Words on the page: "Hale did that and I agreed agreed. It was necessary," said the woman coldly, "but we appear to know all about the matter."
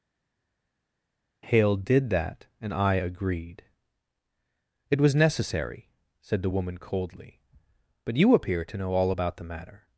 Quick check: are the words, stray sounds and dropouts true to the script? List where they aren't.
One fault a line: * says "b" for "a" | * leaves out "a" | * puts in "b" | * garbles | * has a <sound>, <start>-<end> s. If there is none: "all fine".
* leaves out "agreed"
* says "you" for "we"